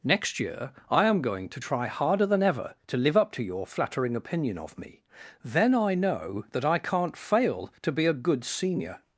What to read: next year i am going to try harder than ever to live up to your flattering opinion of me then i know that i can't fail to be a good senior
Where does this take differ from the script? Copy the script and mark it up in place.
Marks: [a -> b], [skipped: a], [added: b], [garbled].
next year i am going to try harder than ever to live up to your flattering opinion of me then i know that i can't fail to be a good senior